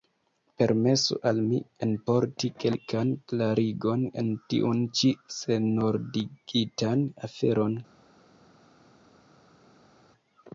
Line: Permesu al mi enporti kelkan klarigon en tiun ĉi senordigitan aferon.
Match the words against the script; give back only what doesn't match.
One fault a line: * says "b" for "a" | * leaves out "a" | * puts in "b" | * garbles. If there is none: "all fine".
all fine